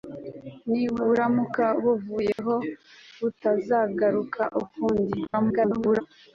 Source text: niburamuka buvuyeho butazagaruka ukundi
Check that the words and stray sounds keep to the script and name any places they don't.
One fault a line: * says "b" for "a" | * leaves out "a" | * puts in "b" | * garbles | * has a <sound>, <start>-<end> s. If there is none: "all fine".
* has a dropout, 2.3-2.4 s
* garbles